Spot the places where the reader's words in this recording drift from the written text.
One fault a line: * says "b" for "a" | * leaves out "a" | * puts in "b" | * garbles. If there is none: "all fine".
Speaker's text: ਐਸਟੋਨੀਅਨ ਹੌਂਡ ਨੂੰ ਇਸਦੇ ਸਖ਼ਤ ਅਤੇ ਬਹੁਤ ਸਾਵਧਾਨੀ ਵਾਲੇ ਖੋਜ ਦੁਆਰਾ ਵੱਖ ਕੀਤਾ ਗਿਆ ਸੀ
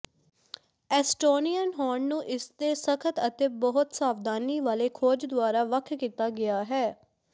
* says "ਹੈ" for "ਸੀ"